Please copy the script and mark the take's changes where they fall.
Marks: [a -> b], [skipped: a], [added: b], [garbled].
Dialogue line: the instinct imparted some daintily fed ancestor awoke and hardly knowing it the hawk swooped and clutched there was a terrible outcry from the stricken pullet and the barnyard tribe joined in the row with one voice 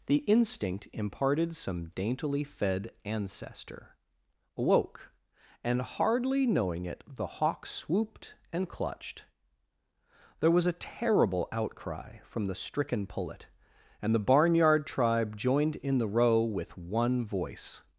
the instinct imparted some daintily fed ancestor awoke and hardly knowing it the hawk swooped and clutched there was a terrible outcry from the stricken pullet and the barnyard tribe joined in the row with one voice